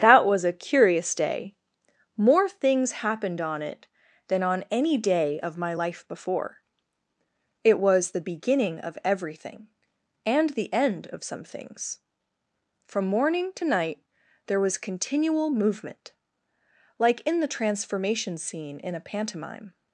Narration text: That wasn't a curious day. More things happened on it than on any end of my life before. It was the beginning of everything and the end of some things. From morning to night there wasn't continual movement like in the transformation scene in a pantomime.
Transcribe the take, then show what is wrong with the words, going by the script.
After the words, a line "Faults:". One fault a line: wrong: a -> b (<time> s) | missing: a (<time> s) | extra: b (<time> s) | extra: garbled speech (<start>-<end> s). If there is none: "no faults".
That was a curious day. More things happened on it than on any day of my life before. It was the beginning of everything and the end of some things. From morning to night there was continual movement like in the transformation scene in a pantomime.
Faults:
wrong: wasn't -> was (0.2 s)
wrong: end -> day (5.0 s)
wrong: wasn't -> was (14.6 s)